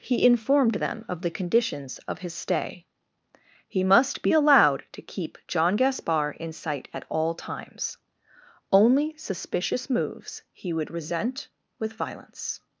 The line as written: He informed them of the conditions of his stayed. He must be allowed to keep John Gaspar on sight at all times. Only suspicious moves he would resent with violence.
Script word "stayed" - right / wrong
wrong